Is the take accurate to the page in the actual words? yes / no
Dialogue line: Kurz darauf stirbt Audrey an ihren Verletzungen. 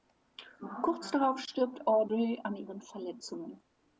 yes